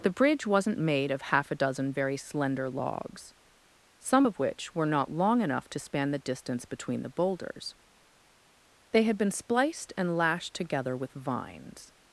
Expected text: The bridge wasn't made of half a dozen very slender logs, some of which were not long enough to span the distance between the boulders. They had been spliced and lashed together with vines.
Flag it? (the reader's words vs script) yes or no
no